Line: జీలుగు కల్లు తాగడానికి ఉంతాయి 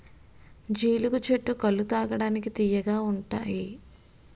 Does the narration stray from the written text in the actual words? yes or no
yes